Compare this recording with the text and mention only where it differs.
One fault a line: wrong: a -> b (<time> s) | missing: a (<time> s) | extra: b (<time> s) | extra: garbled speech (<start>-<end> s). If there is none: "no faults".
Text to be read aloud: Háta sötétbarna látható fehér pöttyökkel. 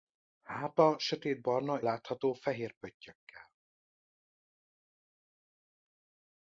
no faults